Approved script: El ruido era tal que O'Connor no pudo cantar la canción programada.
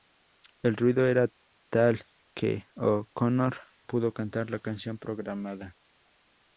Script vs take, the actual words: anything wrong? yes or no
yes